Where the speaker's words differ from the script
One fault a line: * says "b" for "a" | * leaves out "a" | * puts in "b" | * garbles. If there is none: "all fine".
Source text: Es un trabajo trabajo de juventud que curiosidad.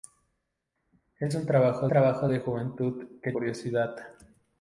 all fine